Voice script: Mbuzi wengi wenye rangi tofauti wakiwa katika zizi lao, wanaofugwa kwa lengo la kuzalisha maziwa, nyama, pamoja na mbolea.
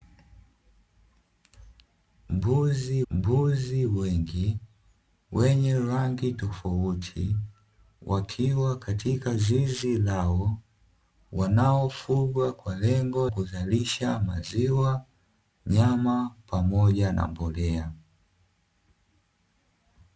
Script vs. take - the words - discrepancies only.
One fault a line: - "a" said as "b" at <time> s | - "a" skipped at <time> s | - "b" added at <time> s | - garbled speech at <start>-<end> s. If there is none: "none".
- "mbuzi" added at 3.1 s
- "la" skipped at 13.3 s